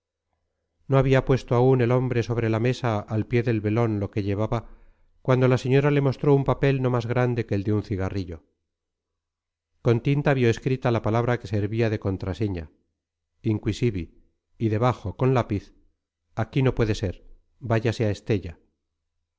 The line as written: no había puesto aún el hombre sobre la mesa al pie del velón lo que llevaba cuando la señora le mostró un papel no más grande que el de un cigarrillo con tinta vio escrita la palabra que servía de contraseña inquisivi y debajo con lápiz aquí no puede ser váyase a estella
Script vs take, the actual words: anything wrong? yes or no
no